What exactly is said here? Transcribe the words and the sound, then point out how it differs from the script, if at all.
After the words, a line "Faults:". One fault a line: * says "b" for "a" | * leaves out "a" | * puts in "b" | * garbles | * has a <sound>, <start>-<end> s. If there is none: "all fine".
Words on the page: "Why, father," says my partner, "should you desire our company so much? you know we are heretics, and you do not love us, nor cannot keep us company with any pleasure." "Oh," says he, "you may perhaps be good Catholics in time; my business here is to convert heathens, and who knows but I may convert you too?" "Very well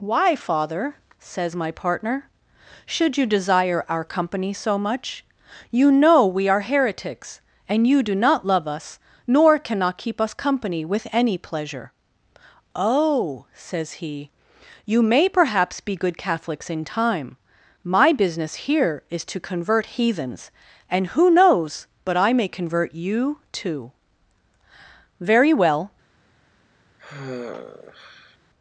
"Why, father," says my partner, "should you desire our company so much? you know we are heretics, and you do not love us, nor cannot keep us company with any pleasure." "Oh," says he, "you may perhaps be good Catholics in time; my business here is to convert heathens, and who knows but I may convert you too?" "Very well
Faults:
* has a sigh, 27.0-28.4 s